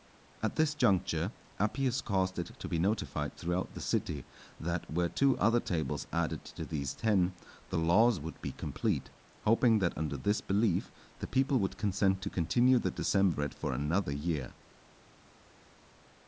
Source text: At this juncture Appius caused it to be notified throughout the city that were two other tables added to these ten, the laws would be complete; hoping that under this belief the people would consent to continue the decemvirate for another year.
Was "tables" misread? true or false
false